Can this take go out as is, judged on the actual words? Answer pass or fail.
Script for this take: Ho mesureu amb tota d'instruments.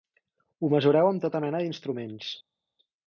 fail